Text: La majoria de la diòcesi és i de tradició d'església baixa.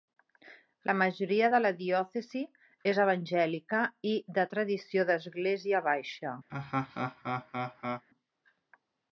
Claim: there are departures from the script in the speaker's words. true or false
true